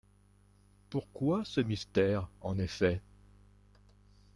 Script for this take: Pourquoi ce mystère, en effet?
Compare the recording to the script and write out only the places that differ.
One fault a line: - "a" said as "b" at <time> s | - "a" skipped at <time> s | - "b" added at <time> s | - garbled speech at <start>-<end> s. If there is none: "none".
none